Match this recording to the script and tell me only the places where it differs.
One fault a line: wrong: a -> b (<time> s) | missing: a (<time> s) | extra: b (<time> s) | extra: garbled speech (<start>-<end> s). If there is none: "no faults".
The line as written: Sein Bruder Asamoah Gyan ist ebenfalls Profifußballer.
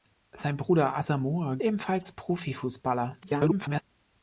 missing: Gyan ist (1.6 s)
extra: garbled speech (3.2-3.8 s)